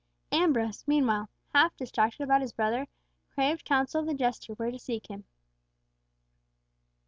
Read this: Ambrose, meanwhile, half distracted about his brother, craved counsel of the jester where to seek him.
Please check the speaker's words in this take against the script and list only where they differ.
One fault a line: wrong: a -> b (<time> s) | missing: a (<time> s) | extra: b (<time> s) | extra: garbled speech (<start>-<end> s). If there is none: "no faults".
no faults